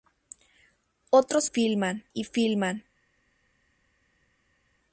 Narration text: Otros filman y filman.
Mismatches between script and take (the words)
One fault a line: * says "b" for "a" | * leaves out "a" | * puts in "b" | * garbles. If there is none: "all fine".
all fine